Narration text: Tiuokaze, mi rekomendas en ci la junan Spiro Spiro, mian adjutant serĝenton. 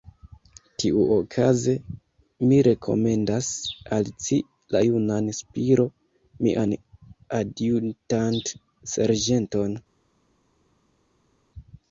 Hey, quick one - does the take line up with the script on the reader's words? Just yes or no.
no